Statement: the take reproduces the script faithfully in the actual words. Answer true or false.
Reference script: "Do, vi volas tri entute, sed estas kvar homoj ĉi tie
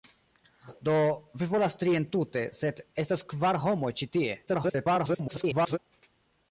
false